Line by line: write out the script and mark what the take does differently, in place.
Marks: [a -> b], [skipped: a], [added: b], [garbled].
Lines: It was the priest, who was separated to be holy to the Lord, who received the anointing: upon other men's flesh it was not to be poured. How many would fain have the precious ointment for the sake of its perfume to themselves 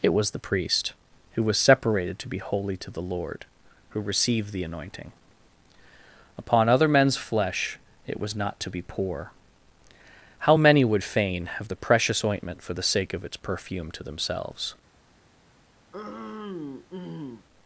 It was the priest, who was separated to be holy to the Lord, who received the anointing: upon other men's flesh it was not to be [poured. -> pour] How many would fain have the precious ointment for the sake of its perfume to themselves